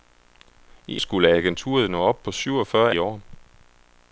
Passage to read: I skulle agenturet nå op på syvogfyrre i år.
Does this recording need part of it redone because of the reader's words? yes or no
no